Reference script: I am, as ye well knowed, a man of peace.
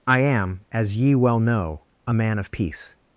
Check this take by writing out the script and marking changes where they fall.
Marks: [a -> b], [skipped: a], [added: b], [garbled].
I am, as ye well [knowed, -> know] a man of peace.